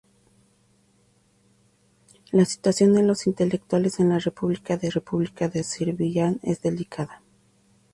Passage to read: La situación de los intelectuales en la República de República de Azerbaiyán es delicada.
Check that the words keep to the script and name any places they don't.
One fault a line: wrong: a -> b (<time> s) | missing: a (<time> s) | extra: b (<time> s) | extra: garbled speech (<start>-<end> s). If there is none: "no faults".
no faults